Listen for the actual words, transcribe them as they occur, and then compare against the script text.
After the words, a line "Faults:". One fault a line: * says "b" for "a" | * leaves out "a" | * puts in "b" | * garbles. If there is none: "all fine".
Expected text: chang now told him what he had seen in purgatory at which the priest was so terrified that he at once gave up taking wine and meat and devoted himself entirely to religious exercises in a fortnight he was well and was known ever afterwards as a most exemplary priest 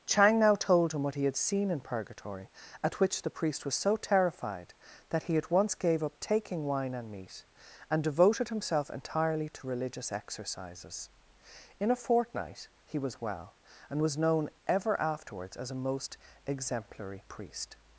chang now told him what he had seen in purgatory at which the priest was so terrified that he at once gave up taking wine and meat and devoted himself entirely to religious exercises in a fortnight he was well and was known ever afterwards as a most exemplary priest
Faults:
all fine